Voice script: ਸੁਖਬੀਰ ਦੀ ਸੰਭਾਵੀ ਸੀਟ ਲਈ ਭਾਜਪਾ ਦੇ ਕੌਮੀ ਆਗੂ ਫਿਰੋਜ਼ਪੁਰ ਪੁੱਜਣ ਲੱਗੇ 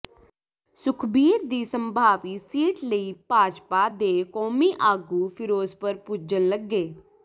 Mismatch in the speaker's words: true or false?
false